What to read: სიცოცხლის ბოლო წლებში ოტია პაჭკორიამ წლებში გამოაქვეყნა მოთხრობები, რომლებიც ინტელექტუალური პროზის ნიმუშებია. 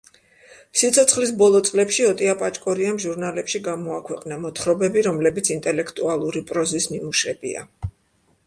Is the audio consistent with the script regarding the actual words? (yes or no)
no